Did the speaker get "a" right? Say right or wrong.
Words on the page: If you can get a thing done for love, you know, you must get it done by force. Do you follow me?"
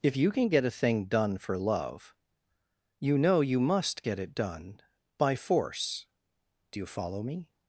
right